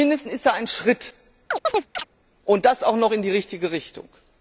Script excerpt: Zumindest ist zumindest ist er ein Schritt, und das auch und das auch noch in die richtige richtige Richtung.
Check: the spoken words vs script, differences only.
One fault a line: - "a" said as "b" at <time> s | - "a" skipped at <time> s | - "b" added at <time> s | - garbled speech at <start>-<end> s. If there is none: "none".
- "zumindest ist" skipped at 0.5 s
- "und das auch" skipped at 2.9 s
- "richtige" skipped at 3.7 s